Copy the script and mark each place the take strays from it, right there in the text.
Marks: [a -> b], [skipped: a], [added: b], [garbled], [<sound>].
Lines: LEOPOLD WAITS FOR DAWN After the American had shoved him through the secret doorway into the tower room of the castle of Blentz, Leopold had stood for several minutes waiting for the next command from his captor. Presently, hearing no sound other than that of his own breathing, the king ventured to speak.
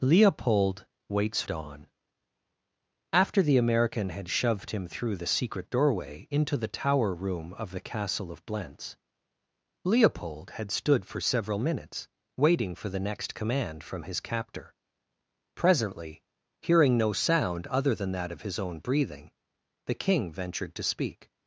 LEOPOLD WAITS [skipped: FOR] DAWN After the American had shoved him through the secret doorway into the tower room of the castle of Blentz, Leopold had stood for several minutes waiting for the next command from his captor. Presently, hearing no sound other than that of his own breathing, the king ventured to speak.